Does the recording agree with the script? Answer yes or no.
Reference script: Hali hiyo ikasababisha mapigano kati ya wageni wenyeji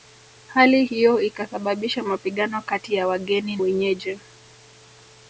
yes